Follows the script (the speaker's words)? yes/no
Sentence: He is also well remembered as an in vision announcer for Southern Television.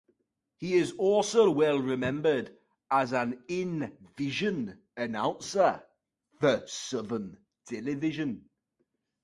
yes